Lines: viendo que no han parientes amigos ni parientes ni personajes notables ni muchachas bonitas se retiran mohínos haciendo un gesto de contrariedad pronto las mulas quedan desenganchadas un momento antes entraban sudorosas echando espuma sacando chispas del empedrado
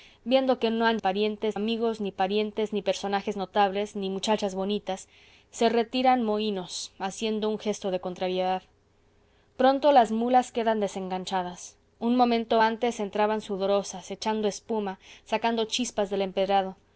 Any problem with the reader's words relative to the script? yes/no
no